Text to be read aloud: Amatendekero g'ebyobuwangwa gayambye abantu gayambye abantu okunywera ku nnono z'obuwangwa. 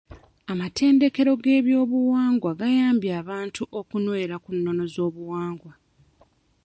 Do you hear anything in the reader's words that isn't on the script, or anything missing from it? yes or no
yes